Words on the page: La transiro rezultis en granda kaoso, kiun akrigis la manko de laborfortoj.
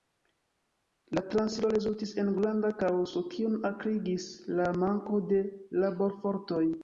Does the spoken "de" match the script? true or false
true